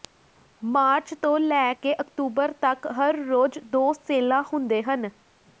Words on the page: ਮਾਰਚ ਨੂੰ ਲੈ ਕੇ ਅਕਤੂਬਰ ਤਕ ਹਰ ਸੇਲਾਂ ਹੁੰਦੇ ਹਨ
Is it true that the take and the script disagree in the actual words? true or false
true